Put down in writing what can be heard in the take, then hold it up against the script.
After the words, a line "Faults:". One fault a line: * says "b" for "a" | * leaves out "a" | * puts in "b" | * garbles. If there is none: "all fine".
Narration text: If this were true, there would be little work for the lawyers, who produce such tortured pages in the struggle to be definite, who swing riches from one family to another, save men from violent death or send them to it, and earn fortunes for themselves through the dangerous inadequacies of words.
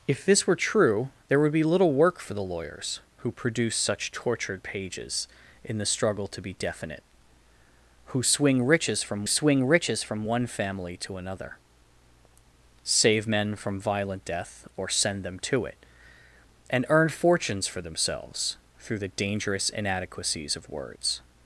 If this were true, there would be little work for the lawyers, who produce such tortured pages in the struggle to be definite, who swing riches from swing riches from one family to another, save men from violent death or send them to it, and earn fortunes for themselves through the dangerous inadequacies of words.
Faults:
* puts in "swing riches from"